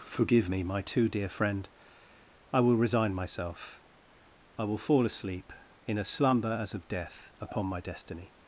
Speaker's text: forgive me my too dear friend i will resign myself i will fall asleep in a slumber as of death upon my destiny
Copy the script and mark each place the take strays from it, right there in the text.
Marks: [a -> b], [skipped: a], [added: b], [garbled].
forgive me my too dear friend i will resign myself i will fall asleep in a slumber as of death upon my destiny